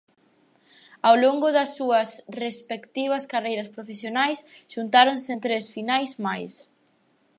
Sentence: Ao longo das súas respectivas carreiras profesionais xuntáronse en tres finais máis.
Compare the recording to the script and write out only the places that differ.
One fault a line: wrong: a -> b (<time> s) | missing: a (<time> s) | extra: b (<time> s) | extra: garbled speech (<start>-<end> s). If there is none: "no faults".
no faults